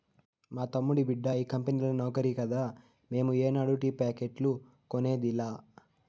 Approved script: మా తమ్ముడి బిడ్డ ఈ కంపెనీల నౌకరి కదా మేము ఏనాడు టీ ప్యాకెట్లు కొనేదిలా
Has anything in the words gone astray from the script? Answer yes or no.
no